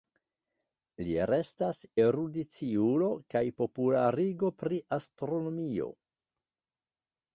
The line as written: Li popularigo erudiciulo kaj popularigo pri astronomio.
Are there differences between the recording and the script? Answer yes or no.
yes